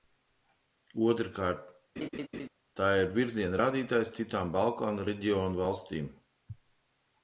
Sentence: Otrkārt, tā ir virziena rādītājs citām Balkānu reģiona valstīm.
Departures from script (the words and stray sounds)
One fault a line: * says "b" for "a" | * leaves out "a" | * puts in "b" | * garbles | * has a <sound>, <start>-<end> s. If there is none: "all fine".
* has a laugh, 2.0-2.5 s